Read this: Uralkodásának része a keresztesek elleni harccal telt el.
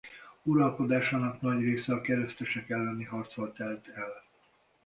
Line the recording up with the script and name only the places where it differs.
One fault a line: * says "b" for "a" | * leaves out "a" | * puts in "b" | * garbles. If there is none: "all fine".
* puts in "nagy"